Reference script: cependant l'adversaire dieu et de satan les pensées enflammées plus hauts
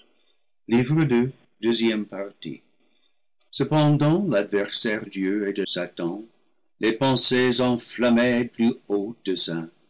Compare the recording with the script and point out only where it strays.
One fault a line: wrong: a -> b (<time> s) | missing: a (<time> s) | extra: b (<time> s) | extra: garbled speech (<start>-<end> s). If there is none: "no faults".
no faults